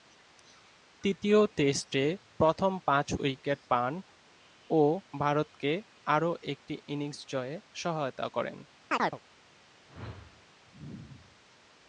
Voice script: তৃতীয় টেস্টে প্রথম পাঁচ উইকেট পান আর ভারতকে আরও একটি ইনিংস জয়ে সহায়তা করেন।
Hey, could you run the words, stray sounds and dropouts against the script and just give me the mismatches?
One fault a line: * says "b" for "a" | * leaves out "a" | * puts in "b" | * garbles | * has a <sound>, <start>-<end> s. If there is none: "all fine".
* says "ও" for "আর"
* has a chirp, 8.9-9.2 s
* has a whoosh, 9.8-10.4 s